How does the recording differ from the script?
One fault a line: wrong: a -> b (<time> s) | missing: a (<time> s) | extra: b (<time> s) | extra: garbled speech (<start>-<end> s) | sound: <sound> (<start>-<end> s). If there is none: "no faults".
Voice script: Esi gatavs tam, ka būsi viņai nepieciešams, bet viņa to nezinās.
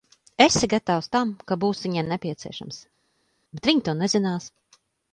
no faults